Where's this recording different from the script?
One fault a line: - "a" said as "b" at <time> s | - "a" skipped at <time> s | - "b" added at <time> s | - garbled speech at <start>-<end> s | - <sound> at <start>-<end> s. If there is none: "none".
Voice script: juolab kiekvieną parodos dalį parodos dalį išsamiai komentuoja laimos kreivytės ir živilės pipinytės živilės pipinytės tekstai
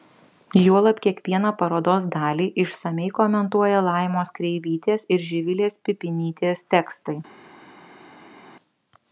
- "parodos dalį" skipped at 2.5 s
- "živilės pipinytės" skipped at 6.6 s